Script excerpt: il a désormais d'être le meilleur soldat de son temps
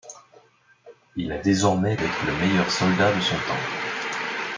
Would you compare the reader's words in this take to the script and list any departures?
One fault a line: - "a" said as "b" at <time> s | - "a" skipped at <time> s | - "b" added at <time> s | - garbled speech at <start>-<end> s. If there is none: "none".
none